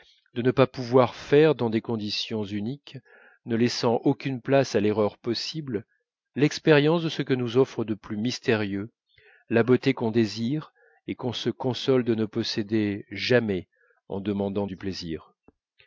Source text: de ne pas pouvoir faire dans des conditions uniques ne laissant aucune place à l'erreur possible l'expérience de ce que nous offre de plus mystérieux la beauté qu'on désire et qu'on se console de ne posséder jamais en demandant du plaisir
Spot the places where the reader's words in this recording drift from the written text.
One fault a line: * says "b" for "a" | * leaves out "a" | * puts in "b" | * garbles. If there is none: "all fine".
all fine